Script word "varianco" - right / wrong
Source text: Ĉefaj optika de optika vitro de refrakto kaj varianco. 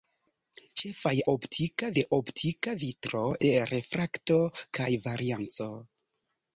right